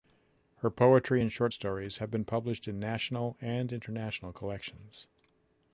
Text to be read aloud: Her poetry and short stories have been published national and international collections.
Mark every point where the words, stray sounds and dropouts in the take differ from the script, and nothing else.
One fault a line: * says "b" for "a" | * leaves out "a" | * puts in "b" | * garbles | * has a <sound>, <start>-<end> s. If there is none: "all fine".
* puts in "in"